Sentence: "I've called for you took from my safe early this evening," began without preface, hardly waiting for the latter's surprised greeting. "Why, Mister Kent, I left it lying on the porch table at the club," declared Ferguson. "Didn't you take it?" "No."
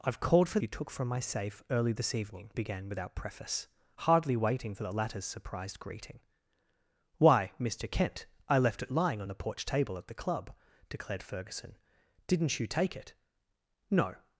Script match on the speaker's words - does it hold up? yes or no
yes